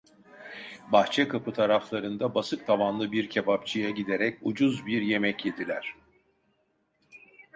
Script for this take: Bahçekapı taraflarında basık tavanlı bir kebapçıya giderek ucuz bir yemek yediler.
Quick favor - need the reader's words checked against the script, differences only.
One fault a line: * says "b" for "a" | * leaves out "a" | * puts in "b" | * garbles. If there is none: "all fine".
all fine